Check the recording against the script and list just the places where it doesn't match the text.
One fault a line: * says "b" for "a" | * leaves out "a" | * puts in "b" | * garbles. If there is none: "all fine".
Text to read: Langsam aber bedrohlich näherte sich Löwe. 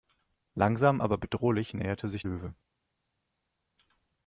all fine